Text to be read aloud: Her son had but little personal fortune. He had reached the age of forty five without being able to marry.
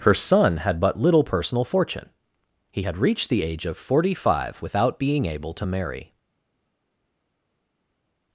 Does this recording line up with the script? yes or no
yes